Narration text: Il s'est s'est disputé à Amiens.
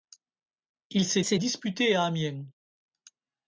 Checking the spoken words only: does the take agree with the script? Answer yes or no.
yes